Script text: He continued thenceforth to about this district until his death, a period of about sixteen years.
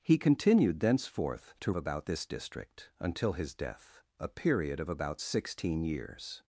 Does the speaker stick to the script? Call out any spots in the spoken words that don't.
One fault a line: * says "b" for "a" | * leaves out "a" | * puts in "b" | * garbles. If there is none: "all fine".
all fine